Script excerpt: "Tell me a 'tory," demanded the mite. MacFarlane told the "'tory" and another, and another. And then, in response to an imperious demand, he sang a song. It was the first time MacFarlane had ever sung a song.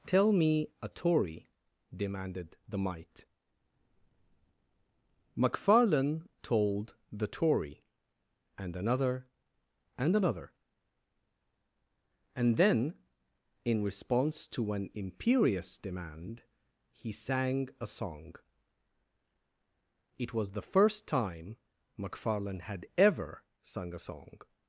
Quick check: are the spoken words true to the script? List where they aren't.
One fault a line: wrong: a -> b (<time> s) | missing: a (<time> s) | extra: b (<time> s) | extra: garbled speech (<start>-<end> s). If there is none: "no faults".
no faults